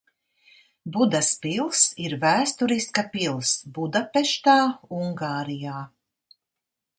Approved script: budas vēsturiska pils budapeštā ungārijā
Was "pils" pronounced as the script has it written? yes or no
yes